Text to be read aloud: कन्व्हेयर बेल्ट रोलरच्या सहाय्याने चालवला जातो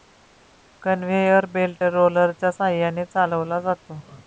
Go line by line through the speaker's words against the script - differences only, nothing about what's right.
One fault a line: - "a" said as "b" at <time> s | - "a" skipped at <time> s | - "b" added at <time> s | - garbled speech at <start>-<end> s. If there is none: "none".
none